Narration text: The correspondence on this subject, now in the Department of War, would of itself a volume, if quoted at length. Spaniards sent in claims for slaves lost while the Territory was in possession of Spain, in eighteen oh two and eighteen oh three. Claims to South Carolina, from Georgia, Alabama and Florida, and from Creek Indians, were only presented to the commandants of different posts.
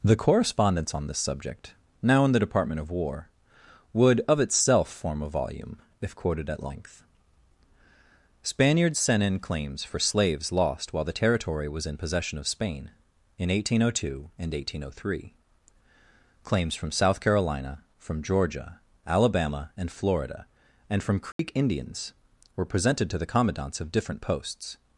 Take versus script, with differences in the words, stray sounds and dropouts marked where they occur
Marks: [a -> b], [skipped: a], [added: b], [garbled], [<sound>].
The correspondence on this subject, now in the Department of War, would of itself [added: form] a volume, if quoted at length. Spaniards sent in claims for slaves lost while the Territory was in possession of Spain, in eighteen oh two and eighteen oh three. Claims [to -> from] South Carolina, from Georgia, Alabama and Florida, and from Creek [dropout] Indians, were [skipped: only] presented to the commandants of different posts.